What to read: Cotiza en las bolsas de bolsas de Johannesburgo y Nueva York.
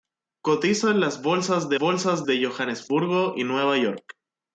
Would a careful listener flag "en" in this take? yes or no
no